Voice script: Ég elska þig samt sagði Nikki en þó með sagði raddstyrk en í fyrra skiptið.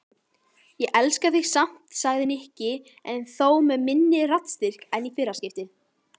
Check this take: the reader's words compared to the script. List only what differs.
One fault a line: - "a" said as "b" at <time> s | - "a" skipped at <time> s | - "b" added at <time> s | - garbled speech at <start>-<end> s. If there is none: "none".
- "sagði" said as "minni" at 3.9 s